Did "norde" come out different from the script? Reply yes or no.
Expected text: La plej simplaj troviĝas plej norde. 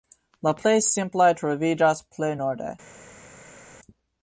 no